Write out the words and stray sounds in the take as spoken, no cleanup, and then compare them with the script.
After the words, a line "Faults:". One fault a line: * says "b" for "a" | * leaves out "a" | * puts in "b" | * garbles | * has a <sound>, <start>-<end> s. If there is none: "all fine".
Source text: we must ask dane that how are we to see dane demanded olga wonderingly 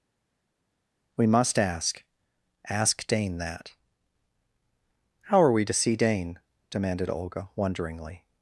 we must ask ask dane that how are we to see dane demanded olga wonderingly
Faults:
* puts in "ask"